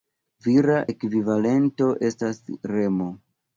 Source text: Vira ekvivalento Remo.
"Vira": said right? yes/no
yes